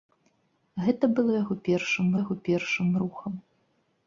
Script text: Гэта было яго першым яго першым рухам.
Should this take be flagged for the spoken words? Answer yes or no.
no